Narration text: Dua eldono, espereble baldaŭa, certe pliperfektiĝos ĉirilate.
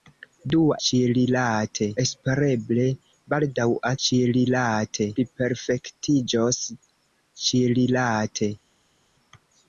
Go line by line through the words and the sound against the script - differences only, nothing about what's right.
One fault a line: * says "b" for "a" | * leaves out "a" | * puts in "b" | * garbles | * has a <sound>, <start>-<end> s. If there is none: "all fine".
* says "ĉirilate" for "eldono"
* says "ĉirilate" for "certe"